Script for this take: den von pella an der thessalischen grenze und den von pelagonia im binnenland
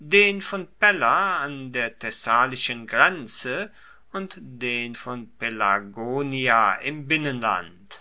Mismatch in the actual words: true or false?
false